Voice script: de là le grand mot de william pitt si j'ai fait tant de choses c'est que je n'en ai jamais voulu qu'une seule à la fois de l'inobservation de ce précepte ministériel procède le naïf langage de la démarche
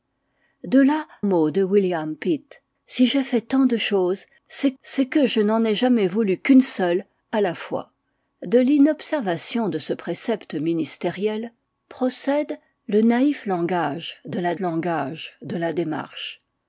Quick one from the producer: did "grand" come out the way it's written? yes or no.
no